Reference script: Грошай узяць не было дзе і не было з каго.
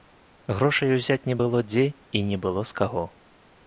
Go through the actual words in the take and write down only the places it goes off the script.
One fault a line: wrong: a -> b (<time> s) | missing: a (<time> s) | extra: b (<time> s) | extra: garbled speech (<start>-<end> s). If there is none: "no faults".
no faults